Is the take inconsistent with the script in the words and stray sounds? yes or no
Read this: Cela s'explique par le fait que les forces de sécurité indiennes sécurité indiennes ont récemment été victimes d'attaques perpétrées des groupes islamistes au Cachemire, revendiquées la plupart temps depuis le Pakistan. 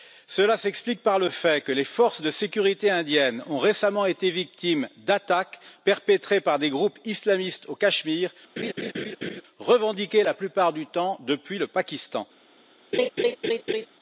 yes